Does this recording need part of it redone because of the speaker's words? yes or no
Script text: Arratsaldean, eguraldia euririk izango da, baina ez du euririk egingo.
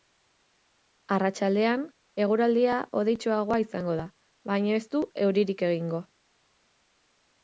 yes